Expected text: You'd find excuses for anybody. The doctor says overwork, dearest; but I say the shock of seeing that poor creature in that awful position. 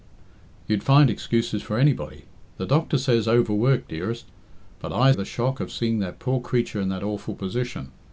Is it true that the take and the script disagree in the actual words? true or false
true